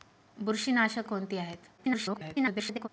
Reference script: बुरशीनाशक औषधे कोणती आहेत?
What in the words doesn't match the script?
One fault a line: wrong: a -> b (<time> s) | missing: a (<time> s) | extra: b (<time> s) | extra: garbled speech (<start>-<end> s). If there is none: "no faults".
missing: औषधे (1.1 s)
extra: garbled speech (1.8-2.9 s)